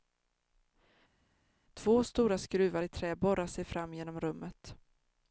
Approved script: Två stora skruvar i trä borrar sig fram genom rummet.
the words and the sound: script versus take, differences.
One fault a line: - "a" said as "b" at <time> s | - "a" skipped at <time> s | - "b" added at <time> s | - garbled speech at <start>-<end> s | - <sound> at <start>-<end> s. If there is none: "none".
none